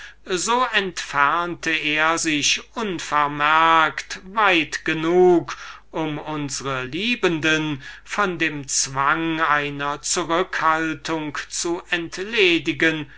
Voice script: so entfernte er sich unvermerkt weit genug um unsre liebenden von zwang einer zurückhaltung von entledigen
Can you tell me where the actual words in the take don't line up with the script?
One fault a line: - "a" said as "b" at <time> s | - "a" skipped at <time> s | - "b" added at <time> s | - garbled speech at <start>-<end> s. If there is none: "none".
- "dem" added at 8.4 s
- "von" said as "zu" at 11.5 s